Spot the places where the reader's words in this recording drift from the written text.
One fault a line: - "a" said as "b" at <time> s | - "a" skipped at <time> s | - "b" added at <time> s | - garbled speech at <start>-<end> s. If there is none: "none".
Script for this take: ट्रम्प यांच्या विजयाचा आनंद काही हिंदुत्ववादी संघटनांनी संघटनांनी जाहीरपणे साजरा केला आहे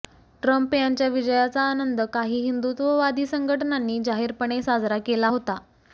- "संघटनांनी" skipped at 4.0 s
- "आहे" said as "होता" at 5.2 s